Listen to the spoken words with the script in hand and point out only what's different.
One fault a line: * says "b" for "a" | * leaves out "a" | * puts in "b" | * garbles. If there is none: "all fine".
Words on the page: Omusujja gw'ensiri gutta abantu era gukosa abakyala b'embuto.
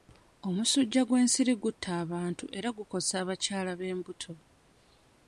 all fine